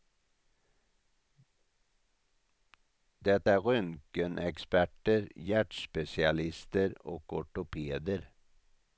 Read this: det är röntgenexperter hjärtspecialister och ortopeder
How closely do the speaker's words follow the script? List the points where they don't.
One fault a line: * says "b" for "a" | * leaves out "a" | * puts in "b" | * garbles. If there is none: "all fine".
all fine